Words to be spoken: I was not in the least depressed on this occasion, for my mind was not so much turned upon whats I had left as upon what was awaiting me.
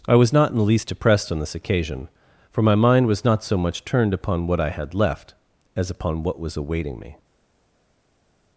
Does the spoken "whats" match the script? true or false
false